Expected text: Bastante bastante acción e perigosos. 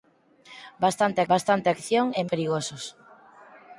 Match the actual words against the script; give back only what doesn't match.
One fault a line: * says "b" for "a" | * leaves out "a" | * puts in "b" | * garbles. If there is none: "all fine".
all fine